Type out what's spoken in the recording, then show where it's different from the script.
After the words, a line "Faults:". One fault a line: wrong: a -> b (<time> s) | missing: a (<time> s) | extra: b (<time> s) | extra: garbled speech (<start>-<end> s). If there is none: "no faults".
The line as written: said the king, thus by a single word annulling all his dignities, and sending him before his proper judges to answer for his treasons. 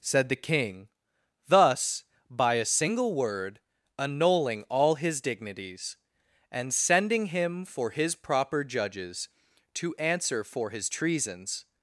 said the king, thus by a single word annulling all his dignities, and sending him for his proper judges to answer for his treasons.
Faults:
wrong: before -> for (7.6 s)